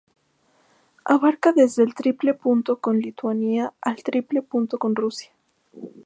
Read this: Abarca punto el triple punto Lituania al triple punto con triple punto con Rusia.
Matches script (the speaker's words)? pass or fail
fail